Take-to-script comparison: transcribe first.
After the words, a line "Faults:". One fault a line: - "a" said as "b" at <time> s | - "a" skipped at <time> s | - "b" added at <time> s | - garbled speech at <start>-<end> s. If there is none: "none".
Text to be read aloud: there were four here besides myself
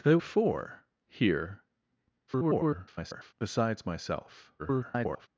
there four here [garbled] besides myself [garbled]
Faults:
- "were" skipped at 0.2 s
- garbled speech at 2.3-3.3 s
- garbled speech at 4.6-5.3 s